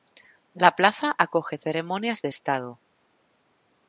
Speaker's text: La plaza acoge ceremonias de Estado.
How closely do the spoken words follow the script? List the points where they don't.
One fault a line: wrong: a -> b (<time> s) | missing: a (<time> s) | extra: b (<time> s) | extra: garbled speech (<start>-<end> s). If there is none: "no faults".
no faults